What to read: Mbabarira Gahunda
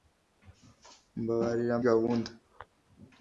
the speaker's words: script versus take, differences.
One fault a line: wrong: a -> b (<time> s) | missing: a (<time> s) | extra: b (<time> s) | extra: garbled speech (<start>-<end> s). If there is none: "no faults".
no faults